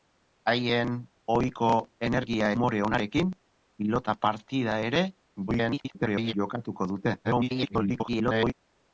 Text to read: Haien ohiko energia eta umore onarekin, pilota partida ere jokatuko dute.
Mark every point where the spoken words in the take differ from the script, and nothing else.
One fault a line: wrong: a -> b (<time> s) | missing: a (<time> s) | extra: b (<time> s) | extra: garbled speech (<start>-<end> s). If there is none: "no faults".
missing: eta (2.5 s)
extra: garbled speech (5.5-6.3 s)
extra: garbled speech (7.2-8.5 s)